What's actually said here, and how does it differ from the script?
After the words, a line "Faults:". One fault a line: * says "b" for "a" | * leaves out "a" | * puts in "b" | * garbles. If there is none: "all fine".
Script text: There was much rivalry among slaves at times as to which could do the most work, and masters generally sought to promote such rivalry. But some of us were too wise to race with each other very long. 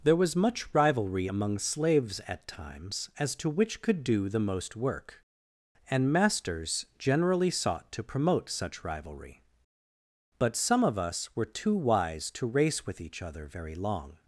There was much rivalry among slaves at times as to which could do the most work, and masters generally sought to promote such rivalry. But some of us were too wise to race with each other very long.
Faults:
all fine